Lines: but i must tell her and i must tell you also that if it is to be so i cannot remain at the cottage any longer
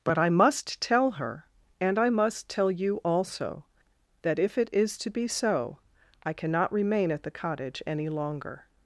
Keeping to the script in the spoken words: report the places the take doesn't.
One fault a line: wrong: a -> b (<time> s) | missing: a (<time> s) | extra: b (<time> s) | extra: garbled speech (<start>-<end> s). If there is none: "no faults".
no faults